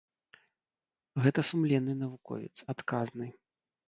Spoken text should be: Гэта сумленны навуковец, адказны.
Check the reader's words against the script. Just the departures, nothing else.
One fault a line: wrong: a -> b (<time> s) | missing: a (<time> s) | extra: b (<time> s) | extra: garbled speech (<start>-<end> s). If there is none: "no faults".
no faults